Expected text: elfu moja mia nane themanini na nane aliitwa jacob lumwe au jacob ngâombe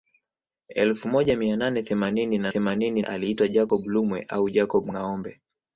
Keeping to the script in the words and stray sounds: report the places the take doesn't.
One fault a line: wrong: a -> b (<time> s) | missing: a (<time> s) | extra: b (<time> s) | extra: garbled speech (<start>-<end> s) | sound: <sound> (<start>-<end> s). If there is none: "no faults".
wrong: nane -> themanini (2.5 s)